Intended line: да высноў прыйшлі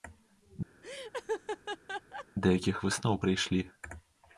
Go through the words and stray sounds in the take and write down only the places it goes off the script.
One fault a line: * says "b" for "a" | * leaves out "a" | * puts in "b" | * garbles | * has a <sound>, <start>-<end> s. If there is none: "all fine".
* has a laugh, 0.8-2.3 s
* puts in "якіх"